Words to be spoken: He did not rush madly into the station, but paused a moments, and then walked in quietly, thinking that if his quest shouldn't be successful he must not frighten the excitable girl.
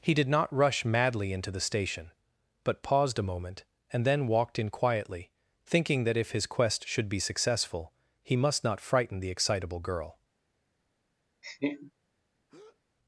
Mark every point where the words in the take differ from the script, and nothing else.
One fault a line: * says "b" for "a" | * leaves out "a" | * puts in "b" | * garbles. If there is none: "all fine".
* says "moment" for "moments"
* says "should" for "shouldn't"